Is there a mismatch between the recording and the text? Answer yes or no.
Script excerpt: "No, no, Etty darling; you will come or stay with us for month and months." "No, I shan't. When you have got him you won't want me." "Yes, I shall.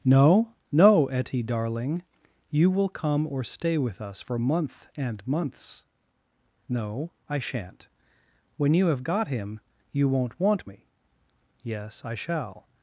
no